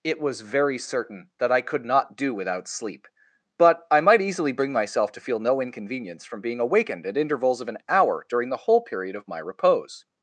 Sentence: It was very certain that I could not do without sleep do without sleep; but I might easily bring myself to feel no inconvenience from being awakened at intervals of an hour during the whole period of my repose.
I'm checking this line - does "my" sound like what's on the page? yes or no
yes